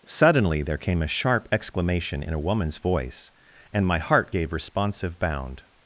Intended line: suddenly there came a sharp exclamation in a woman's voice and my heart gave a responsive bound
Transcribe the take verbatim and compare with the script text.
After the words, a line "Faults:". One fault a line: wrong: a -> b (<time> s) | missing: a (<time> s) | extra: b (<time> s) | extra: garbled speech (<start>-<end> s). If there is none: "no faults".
suddenly there came a sharp exclamation in a woman's voice and my heart gave responsive bound
Faults:
missing: a (4.5 s)